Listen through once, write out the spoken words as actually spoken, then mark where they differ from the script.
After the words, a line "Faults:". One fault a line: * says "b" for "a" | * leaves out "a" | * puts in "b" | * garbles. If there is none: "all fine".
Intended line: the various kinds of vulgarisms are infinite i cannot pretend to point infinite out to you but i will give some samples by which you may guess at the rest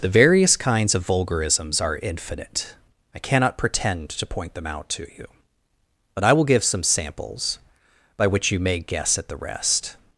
the various kinds of vulgarisms are infinite i cannot pretend to point them out to you but i will give some samples by which you may guess at the rest
Faults:
* says "them" for "infinite"